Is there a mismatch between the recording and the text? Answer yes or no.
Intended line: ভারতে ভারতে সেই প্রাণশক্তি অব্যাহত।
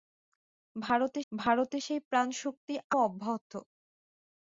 no